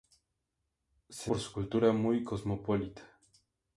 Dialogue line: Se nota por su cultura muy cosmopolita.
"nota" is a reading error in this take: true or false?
true